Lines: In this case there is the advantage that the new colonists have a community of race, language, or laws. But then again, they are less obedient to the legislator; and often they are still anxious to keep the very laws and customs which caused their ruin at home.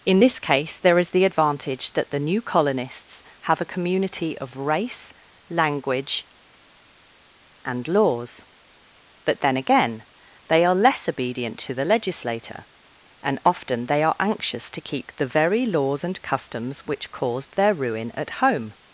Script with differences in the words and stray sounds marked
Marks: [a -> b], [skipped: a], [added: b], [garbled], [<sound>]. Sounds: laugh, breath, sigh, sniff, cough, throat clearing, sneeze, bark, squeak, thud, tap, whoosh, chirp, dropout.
In this case there is the advantage that the new colonists have a community of race, language, [or -> and] laws. But then again, they are less obedient to the legislator; and often they are [skipped: still] anxious to keep the very laws and customs which caused their ruin at home.